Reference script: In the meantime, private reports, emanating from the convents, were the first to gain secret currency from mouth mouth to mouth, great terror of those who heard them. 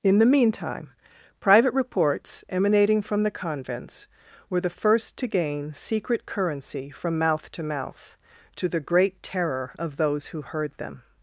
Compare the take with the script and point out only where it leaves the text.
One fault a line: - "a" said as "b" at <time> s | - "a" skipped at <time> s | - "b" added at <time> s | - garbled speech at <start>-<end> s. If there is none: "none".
- "to" added at 7.5 s
- "mouth" said as "the" at 8.7 s